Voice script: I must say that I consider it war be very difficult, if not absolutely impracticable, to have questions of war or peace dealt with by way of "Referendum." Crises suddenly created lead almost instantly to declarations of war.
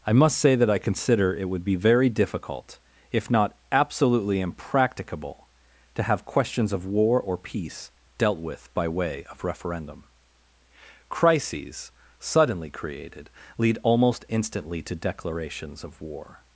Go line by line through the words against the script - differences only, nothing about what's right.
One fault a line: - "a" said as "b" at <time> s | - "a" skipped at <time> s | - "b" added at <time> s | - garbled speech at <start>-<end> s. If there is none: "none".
- "war" said as "would" at 1.5 s